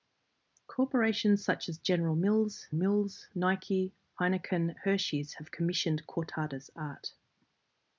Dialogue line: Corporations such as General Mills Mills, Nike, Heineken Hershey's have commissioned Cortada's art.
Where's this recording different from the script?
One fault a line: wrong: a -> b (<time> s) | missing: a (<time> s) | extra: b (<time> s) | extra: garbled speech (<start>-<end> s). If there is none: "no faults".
no faults